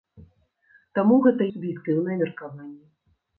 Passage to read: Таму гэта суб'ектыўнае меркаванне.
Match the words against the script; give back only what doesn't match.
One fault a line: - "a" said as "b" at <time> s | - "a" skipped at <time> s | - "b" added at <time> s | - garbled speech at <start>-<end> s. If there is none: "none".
none